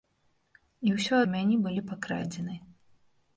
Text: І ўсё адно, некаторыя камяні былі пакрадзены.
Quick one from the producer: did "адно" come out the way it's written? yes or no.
no